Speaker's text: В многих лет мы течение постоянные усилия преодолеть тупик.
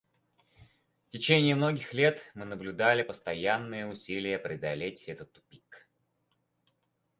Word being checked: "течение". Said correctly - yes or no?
no